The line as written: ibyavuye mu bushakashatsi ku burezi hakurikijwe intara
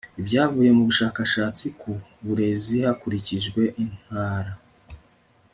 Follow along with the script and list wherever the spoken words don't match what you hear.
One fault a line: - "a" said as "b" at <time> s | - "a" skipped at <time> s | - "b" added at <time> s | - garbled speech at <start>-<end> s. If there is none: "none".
none